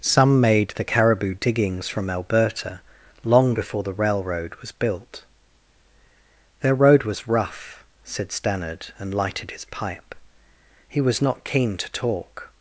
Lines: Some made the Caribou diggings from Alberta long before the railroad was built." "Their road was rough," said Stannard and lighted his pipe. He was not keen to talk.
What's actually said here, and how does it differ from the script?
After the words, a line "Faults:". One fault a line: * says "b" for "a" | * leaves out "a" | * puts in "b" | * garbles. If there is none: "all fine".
Some made the Caribou diggings from Alberta long before the railroad was built." "Their road was rough," said Stannard and lighted his pipe. He was not keen to talk.
Faults:
all fine